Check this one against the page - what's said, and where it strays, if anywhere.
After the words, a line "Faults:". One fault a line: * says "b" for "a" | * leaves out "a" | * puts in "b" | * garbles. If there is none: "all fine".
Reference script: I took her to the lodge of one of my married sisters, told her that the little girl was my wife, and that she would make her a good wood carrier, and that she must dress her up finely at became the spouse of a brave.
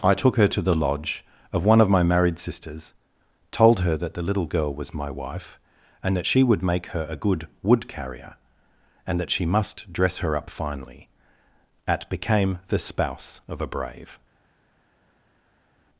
I took her to the lodge of one of my married sisters, told her that the little girl was my wife, and that she would make her a good wood carrier, and that she must dress her up finely at became the spouse of a brave.
Faults:
all fine